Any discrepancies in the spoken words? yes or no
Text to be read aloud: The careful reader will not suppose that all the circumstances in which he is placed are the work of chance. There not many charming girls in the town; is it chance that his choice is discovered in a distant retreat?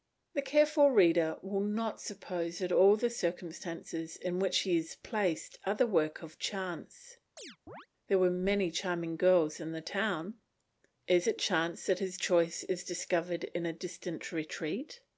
yes